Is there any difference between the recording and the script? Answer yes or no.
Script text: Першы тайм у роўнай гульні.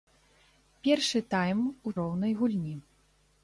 no